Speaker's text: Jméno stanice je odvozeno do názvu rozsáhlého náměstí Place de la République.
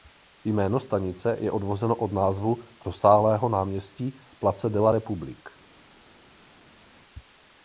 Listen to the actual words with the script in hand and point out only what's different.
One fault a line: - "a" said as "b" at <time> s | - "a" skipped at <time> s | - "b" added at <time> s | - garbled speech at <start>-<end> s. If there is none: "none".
- "do" said as "od" at 1.9 s